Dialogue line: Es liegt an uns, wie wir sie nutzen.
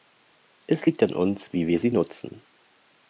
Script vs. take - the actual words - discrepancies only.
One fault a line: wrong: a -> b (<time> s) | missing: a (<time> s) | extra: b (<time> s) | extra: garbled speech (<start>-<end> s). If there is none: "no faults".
no faults